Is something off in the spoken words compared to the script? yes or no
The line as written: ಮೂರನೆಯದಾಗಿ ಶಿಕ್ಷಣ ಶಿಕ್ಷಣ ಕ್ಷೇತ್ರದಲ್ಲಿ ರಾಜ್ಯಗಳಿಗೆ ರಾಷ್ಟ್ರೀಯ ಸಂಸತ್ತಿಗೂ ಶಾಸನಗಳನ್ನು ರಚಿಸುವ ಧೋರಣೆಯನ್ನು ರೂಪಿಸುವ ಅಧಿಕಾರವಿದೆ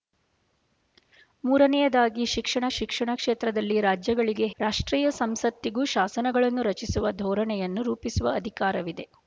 no